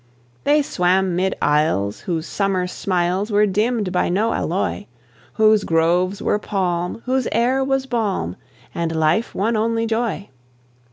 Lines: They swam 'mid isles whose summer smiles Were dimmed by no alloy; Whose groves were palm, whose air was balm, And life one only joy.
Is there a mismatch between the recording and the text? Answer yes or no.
no